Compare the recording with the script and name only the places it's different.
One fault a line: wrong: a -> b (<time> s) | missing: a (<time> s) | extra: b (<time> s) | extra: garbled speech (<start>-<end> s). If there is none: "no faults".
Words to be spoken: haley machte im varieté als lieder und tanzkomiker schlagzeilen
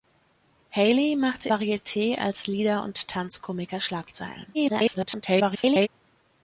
missing: im (1.5 s)
extra: garbled speech (4.5-5.9 s)